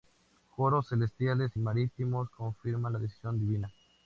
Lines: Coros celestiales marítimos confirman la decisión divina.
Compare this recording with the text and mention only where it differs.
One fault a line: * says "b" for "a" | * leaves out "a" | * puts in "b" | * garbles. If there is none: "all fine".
all fine